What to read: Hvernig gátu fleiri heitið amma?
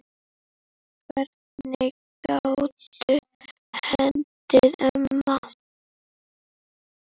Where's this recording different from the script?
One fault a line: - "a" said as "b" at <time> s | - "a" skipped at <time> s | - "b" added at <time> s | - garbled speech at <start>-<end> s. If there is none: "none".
- "fleiri" skipped at 3.2 s